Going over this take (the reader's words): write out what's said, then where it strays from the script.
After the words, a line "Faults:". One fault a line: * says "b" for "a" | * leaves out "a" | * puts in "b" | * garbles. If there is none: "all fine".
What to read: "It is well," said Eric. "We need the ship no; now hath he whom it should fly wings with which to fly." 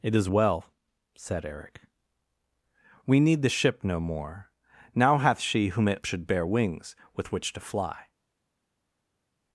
"It is well," said Eric. "We need the ship no more; now hath she whom it should bear wings with which to fly."
Faults:
* puts in "more"
* says "she" for "he"
* says "bear" for "fly"